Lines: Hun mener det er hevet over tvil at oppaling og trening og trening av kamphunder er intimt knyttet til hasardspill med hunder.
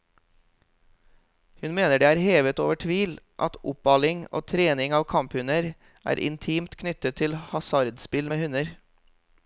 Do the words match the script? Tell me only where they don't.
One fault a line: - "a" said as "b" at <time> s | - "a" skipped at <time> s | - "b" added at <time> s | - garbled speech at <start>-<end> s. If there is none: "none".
- "og trening" skipped at 5.0 s